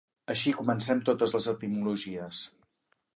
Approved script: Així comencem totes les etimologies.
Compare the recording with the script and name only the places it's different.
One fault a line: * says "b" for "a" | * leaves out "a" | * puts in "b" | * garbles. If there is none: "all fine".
all fine